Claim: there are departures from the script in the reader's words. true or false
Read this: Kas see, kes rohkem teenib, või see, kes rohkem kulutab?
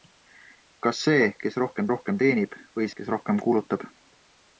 true